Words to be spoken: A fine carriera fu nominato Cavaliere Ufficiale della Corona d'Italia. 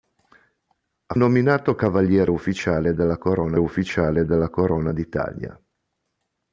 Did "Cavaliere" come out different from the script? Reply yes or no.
yes